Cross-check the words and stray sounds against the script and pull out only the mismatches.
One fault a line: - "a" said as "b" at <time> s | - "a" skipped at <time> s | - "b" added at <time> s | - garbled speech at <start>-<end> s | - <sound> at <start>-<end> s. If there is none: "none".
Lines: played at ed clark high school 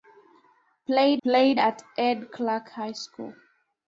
- "played" added at 1.2 s